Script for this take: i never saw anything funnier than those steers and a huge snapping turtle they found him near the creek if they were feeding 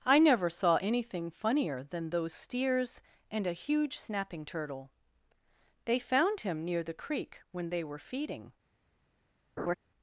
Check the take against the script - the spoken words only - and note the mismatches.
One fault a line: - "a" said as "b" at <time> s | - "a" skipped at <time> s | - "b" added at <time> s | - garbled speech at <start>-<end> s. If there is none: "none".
- "if" said as "when" at 7.5 s